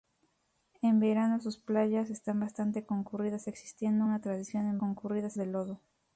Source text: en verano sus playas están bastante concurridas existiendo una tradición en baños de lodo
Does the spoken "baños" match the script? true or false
false